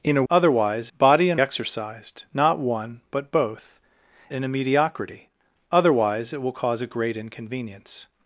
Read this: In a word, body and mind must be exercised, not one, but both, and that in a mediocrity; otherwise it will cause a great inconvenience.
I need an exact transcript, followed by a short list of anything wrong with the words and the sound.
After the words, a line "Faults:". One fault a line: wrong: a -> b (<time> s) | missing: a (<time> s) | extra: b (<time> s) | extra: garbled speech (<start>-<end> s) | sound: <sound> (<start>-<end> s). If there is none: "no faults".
In a otherwise, body and exercised, not one, but both, in a mediocrity; otherwise it will cause a great inconvenience.
Faults:
wrong: word -> otherwise (0.3 s)
missing: mind must be (1.4 s)
missing: and that (3.8 s)